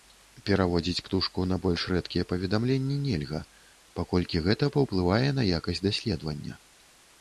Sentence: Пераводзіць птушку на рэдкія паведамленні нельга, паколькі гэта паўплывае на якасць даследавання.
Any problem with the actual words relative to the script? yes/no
yes